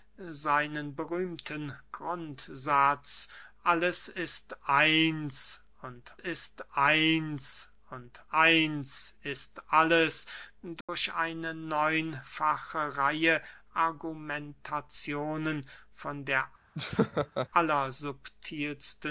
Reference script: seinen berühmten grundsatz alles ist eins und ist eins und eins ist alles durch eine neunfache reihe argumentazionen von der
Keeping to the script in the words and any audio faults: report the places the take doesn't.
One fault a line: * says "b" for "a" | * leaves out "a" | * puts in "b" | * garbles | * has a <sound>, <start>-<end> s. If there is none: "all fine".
* has a dropout, 10.8-10.9 s
* has a laugh, 16.7-17.5 s